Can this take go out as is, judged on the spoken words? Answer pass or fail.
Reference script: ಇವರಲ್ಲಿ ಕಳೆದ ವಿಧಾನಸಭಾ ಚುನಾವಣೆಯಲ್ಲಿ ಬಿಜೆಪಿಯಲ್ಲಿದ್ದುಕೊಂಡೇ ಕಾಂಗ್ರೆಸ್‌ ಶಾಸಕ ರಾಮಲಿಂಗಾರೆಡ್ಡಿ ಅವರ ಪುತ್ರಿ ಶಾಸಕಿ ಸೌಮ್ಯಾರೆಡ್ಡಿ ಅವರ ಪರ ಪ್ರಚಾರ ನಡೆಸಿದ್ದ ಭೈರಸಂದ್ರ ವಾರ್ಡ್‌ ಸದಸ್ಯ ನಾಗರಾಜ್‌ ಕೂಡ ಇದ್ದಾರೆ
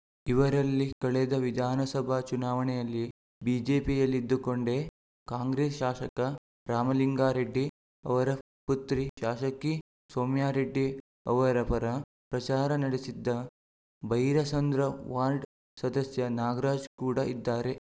pass